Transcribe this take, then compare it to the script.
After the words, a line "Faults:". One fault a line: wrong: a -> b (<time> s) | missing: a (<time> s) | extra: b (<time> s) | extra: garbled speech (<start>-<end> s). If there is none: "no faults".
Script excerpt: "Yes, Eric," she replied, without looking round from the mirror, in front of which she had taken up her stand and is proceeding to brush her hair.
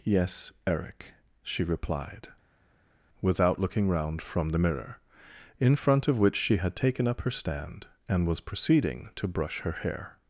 "Yes, Eric," she replied, without looking round from the mirror, in front of which she had taken up her stand and was proceeding to brush her hair.
Faults:
wrong: is -> was (8.3 s)